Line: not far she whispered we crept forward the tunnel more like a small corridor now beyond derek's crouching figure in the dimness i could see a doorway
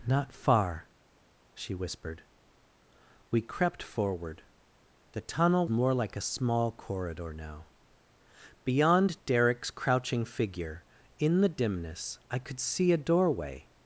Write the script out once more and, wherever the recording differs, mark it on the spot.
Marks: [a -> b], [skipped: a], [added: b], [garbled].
not far she whispered we crept forward the tunnel more like a small corridor now beyond derek's crouching figure in the dimness i could see a doorway